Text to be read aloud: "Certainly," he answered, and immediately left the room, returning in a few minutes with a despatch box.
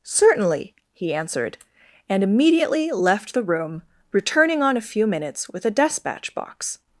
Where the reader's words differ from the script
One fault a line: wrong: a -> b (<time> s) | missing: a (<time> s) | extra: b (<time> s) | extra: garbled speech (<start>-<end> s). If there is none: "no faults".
wrong: in -> on (4.6 s)